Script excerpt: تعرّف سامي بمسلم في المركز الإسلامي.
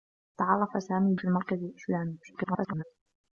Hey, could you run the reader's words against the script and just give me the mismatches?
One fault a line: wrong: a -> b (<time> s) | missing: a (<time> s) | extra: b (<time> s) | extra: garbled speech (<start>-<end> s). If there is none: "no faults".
missing: بمسلم (1.1 s)
extra: garbled speech (2.2-2.8 s)